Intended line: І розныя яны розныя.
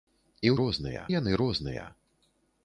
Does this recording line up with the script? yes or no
yes